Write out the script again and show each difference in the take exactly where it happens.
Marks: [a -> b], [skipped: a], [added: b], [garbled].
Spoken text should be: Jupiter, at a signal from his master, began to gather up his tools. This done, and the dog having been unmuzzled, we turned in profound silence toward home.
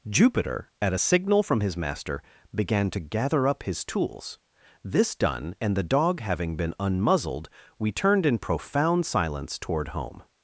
Jupiter, at a signal from his master, began to gather up his tools. This done, and the dog having been unmuzzled, we turned in profound silence toward home.